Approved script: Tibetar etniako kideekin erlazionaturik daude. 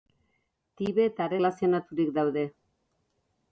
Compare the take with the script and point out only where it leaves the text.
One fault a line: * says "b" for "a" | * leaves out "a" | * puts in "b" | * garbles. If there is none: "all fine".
* leaves out "etniako kideekin"